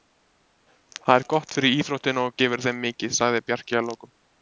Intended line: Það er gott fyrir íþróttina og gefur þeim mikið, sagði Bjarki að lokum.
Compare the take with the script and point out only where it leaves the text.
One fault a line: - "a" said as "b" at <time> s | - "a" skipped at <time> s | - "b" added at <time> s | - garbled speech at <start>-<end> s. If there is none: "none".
none